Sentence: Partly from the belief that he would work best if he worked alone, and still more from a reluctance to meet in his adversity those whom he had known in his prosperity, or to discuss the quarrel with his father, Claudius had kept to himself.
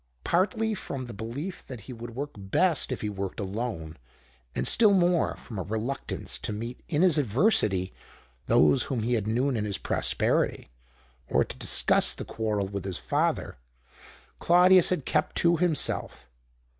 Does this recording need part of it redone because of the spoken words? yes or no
no